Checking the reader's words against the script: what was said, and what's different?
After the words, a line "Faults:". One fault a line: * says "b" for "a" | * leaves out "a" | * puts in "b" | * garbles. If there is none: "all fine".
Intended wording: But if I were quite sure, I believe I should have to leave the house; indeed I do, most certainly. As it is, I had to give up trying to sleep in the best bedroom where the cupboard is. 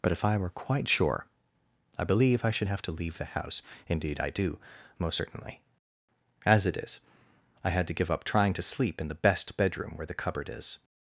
But if I were quite sure, I believe I should have to leave the house; indeed I do, most certainly. As it is, I had to give up trying to sleep in the best bedroom where the cupboard is.
Faults:
all fine